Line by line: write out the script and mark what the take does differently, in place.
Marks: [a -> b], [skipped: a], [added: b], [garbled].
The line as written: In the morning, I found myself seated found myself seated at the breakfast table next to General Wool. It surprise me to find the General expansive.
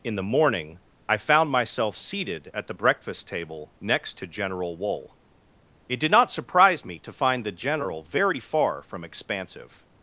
In the morning, I found myself seated [skipped: found myself seated] at the breakfast table next to General Wool. It [added: did not] surprise me to find the General [added: very far from] expansive.